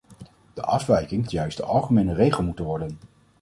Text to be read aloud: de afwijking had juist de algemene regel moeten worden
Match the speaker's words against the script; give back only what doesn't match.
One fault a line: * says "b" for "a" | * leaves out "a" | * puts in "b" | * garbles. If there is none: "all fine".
* leaves out "had"